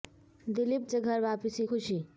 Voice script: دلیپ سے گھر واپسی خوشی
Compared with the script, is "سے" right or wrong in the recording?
right